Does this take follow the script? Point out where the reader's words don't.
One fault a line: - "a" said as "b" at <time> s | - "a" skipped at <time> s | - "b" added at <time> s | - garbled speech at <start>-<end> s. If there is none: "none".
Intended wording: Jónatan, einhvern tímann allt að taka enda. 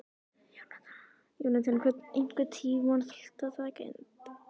none